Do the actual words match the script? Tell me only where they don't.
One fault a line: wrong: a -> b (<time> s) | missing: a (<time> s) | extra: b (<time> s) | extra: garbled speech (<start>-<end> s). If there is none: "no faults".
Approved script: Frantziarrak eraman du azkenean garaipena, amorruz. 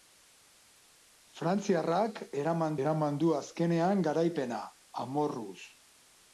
extra: eraman (2.8 s)